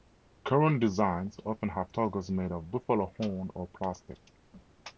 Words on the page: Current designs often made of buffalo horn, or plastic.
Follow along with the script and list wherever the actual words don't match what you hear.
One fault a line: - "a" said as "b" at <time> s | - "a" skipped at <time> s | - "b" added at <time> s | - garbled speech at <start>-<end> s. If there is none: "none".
- "have toggles" added at 1.7 s